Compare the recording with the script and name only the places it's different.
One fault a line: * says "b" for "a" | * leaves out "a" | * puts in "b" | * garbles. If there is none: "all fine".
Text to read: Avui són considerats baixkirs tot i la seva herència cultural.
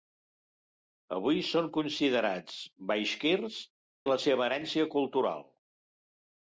* leaves out "tot"